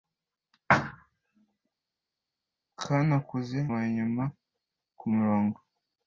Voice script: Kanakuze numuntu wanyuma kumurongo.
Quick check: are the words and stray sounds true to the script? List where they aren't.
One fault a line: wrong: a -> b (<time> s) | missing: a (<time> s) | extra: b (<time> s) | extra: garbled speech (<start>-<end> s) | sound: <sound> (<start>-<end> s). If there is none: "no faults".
missing: numuntu (3.6 s)